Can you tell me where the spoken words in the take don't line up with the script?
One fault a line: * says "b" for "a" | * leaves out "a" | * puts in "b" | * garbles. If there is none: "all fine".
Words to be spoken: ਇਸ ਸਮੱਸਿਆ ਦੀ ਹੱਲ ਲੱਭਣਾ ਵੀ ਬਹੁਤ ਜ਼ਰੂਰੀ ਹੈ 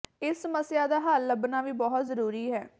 * says "ਦਾ" for "ਦੀ"